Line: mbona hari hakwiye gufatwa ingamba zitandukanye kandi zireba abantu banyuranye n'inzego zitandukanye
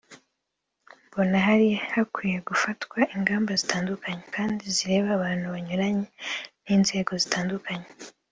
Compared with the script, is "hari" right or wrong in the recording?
right